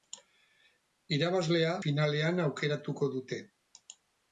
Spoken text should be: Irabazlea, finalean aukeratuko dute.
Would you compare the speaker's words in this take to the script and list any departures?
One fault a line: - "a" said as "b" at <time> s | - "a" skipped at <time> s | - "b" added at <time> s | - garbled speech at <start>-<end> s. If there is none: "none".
none